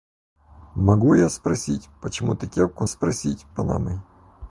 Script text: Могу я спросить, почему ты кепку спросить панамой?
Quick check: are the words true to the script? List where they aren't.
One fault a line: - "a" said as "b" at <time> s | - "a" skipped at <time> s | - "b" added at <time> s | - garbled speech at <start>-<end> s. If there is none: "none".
none